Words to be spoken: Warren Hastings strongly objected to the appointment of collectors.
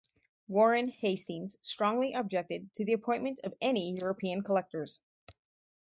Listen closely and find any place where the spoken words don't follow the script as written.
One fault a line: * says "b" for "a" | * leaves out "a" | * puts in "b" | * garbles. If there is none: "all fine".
* puts in "any European"